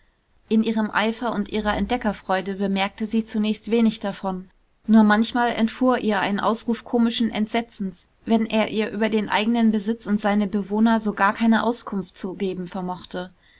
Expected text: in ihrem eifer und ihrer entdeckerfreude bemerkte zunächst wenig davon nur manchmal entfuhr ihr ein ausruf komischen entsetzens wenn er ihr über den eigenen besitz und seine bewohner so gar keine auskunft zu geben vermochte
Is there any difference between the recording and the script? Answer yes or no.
yes